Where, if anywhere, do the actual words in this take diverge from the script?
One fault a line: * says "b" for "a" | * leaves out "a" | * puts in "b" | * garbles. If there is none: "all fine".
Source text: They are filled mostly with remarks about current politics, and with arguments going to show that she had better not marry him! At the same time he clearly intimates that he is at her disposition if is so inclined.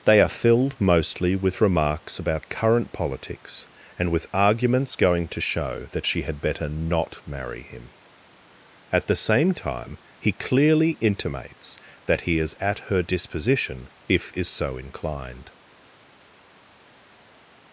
all fine